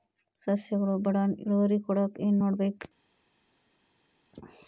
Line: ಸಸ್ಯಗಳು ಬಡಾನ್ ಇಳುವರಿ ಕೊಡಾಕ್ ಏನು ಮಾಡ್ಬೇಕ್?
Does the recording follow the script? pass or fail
pass